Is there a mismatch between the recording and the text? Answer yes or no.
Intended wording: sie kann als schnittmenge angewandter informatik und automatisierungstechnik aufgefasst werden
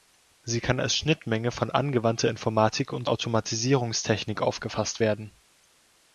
yes